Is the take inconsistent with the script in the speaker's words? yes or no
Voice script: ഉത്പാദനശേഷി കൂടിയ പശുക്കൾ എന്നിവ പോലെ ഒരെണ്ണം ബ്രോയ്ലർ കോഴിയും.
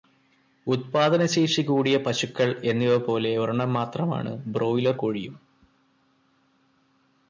yes